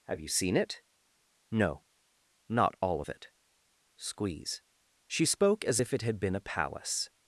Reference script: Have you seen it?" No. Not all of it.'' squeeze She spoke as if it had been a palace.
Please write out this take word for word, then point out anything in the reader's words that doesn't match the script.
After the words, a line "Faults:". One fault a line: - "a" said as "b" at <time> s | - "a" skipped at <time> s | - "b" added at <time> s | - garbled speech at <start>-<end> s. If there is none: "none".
Have you seen it?" No. Not all of it.'' squeeze She spoke as if it had been a palace.
Faults:
none